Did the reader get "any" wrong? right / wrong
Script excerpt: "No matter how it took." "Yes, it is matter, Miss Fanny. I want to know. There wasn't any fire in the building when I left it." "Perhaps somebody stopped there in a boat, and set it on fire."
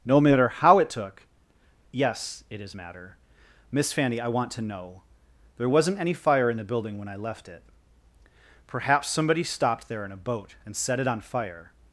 right